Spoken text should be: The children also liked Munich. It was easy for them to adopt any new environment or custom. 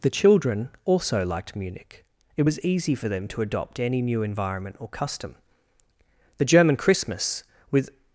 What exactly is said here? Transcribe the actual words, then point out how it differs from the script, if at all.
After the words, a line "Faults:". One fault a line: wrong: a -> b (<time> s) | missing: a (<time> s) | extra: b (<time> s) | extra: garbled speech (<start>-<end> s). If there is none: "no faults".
The children also liked Munich. It was easy for them to adopt any new environment or custom. The German Christmas, with
Faults:
extra: The German Christmas with (6.4 s)